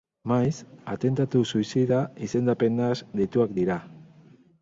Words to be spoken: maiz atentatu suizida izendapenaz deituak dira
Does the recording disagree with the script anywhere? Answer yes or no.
no